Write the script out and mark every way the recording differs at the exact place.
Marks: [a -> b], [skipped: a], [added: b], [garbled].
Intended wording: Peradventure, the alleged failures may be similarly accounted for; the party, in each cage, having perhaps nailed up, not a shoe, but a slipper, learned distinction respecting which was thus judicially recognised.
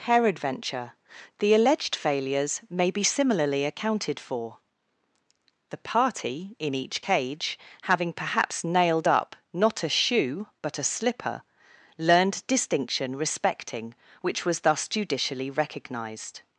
Peradventure, the alleged failures may be similarly accounted for; the party, in each cage, having perhaps nailed up, not a shoe, but a slipper, learned distinction respecting which was thus judicially recognised.